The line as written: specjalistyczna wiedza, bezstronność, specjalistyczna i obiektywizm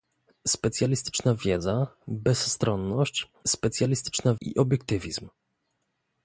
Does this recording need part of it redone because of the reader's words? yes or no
no